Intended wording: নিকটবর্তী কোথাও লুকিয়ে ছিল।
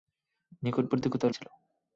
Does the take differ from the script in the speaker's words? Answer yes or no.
yes